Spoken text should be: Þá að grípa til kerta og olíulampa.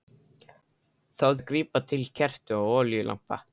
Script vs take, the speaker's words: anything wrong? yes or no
no